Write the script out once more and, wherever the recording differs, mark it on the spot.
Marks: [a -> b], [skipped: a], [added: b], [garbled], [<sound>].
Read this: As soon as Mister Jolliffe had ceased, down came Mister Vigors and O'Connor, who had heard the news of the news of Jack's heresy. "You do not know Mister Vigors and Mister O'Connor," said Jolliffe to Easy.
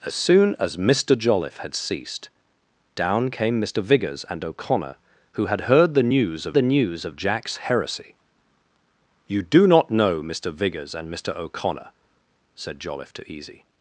As soon as Mister Jolliffe had ceased, down came Mister Vigors and O'Connor, who had heard the news of the news of Jack's heresy. "You do not know Mister Vigors and Mister O'Connor," said Jolliffe to Easy.